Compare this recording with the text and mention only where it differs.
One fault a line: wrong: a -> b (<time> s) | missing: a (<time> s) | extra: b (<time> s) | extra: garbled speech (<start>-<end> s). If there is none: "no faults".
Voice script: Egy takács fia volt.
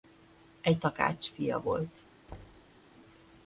no faults